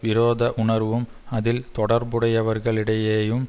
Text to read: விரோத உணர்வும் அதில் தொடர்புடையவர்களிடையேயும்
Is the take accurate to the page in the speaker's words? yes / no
yes